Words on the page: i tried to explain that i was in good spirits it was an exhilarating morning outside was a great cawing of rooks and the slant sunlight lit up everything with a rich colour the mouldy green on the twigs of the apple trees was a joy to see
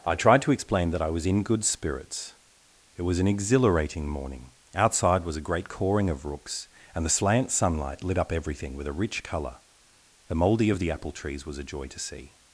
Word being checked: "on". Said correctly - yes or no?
no